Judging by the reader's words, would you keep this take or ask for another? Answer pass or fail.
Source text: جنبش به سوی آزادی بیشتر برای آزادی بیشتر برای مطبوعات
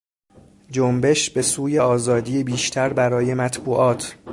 fail